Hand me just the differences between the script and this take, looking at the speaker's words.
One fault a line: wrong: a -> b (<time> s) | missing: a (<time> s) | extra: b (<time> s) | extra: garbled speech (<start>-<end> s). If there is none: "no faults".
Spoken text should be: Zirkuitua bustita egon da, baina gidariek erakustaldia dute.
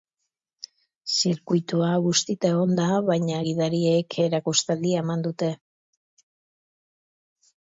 extra: eman (5.1 s)